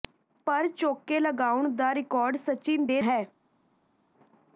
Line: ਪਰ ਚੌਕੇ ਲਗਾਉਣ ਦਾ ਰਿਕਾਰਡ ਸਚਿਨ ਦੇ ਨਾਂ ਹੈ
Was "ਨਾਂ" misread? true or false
true